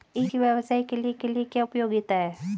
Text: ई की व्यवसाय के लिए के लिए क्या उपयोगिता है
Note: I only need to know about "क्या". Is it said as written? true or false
true